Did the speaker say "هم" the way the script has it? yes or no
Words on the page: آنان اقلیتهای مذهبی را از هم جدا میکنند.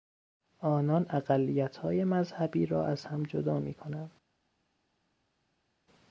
yes